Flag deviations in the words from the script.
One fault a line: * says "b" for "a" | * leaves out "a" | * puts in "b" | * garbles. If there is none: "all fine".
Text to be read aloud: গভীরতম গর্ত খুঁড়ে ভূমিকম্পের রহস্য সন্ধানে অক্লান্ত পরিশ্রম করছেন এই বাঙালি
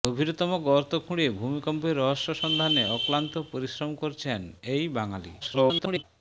* garbles